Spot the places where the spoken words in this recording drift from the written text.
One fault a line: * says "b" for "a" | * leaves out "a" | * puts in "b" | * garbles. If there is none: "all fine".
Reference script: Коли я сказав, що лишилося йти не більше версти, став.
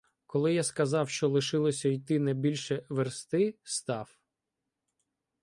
all fine